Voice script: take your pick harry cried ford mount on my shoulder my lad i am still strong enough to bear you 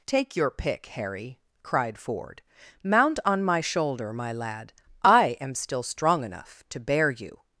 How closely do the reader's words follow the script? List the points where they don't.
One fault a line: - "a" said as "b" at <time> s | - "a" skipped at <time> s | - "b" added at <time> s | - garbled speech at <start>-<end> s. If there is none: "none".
none